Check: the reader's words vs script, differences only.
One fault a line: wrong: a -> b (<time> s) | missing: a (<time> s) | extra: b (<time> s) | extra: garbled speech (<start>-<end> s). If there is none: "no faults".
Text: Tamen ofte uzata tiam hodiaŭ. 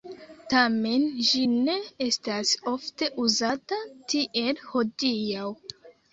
extra: ĝi ne estas (1.3 s)
wrong: tiam -> tiel (4.2 s)